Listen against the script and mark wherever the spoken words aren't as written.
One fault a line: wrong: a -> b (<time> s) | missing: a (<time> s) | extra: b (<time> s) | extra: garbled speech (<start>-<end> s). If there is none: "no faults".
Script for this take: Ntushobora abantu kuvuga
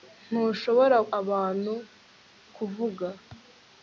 no faults